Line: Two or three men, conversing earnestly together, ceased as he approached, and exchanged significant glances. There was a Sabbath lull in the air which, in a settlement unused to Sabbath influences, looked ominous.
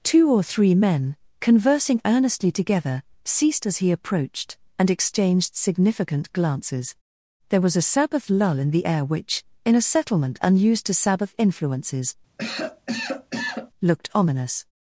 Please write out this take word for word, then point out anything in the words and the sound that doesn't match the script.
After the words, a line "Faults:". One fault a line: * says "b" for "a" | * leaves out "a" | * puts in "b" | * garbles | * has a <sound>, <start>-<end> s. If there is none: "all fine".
Two or three men, conversing earnestly together, ceased as he approached, and exchanged significant glances. There was a Sabbath lull in the air which, in a settlement unused to Sabbath influences, looked ominous.
Faults:
* has a cough, 12.4-13.7 s